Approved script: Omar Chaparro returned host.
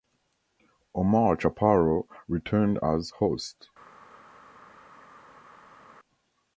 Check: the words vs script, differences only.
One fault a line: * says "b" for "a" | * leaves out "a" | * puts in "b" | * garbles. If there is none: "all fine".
* puts in "as"